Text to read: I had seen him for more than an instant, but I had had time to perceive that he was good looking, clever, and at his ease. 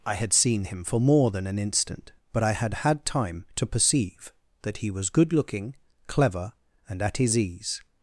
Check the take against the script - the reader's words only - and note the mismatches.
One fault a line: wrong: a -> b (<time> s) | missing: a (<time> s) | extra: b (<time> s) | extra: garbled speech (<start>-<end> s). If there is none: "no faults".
no faults